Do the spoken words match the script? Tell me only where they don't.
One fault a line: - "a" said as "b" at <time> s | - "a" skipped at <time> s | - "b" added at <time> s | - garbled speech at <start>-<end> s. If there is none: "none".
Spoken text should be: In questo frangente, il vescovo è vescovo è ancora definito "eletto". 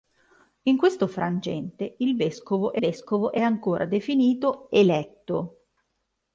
none